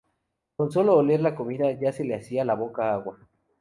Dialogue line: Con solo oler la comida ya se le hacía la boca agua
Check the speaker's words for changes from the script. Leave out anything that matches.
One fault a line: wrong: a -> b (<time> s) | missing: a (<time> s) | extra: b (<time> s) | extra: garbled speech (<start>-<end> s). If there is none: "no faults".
no faults